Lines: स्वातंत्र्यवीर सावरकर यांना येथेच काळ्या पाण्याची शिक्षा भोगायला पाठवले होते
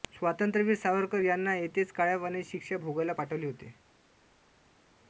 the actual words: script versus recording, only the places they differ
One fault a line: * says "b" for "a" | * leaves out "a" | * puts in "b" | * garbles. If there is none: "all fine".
all fine